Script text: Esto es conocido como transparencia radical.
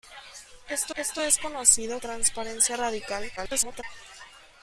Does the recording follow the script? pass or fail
fail